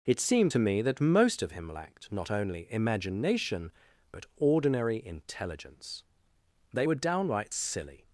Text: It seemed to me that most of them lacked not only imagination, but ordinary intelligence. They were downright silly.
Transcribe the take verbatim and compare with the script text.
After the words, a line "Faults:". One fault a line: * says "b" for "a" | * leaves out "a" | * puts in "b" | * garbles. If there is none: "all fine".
It seemed to me that most of him lacked not only imagination, but ordinary intelligence. They were downright silly.
Faults:
* says "him" for "them"